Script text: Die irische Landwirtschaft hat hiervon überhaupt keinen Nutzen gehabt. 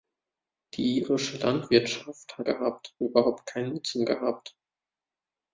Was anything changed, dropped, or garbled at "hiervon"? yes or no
yes